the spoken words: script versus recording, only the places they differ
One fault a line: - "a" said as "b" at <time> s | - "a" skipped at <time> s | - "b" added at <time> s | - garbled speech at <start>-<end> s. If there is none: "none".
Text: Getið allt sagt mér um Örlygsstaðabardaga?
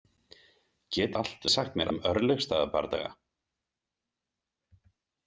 none